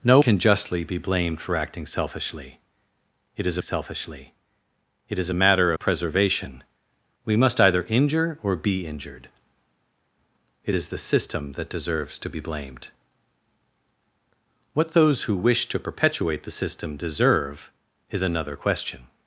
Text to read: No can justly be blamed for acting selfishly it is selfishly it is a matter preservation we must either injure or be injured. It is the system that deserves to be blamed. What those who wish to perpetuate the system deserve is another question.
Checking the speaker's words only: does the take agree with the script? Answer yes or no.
yes